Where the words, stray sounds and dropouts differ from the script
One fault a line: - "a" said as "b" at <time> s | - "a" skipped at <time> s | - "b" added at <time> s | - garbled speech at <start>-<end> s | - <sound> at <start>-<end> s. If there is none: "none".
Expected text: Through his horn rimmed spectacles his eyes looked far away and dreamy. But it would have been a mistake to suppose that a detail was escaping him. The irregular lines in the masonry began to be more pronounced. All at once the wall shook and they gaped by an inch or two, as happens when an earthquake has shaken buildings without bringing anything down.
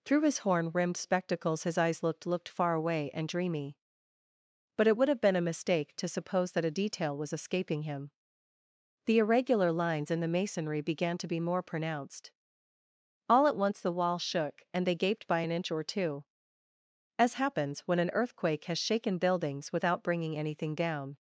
- "looked" added at 2.2 s